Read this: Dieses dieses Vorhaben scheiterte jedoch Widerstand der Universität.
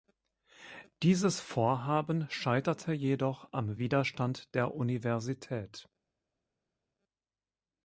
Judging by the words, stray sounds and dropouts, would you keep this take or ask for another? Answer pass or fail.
fail